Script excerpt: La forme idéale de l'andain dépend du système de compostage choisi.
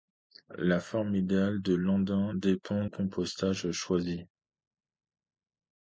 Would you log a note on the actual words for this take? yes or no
yes